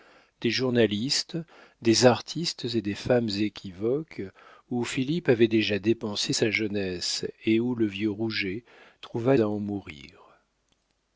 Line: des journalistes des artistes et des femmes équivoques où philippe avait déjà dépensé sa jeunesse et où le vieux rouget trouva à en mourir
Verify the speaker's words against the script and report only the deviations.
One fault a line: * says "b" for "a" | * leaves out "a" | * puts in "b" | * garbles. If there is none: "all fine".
all fine